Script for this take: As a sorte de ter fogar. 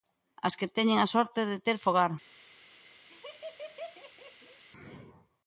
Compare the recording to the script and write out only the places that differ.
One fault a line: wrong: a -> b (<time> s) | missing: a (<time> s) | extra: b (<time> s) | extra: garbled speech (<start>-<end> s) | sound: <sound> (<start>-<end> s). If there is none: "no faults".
extra: que teñen (0.6 s)
sound: laugh (3.1-4.6 s)